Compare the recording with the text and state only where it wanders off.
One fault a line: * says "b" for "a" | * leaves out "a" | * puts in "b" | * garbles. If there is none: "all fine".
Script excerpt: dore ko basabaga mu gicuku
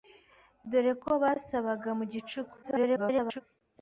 * garbles